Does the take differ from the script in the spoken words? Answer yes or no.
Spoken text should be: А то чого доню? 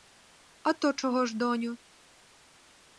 yes